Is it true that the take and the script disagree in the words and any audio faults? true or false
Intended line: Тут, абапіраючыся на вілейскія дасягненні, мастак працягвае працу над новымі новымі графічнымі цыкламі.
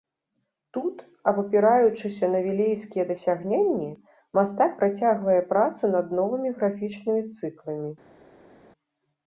true